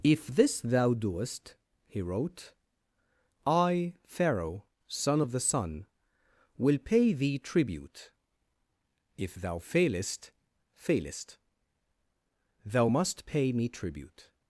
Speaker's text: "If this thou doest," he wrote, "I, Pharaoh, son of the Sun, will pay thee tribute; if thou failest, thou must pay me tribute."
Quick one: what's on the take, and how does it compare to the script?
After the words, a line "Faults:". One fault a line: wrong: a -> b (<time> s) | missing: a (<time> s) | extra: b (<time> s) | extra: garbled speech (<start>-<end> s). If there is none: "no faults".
"If this thou doest," he wrote, "I, Pharaoh, son of the Sun, will pay thee tribute; if thou failest failest, thou must pay me tribute."
Faults:
extra: failest (10.7 s)